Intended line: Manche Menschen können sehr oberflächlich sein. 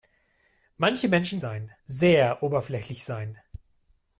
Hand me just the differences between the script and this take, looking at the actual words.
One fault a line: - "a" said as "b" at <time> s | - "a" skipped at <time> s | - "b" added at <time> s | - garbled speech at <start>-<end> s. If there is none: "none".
- "können" said as "sein" at 1.4 s